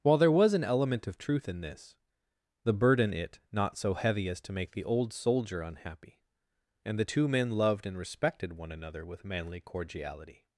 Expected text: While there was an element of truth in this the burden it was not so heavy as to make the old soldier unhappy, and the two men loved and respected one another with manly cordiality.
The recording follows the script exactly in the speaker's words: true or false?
false